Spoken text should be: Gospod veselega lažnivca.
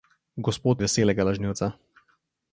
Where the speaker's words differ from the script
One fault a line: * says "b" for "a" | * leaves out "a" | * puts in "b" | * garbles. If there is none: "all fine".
all fine